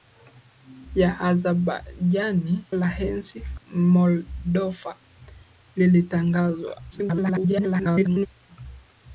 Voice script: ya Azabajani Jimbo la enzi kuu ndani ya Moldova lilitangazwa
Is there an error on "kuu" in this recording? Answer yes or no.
yes